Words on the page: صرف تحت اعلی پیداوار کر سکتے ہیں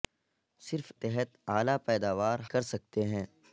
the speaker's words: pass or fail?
pass